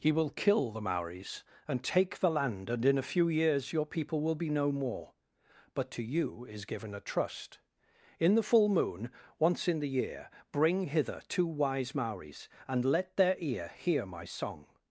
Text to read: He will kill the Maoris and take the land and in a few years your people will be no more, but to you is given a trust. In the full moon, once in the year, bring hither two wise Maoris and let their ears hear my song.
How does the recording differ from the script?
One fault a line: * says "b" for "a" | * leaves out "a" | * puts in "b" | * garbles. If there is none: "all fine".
* says "ear" for "ears"